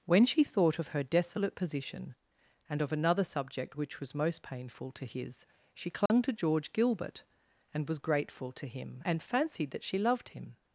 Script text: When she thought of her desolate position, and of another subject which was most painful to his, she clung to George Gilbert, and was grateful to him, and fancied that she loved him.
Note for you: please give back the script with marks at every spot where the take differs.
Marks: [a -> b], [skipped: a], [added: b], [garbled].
When she thought of her desolate position, and of another subject which was most painful to his, she clung to George Gilbert, and was grateful to him, and fancied that she loved him.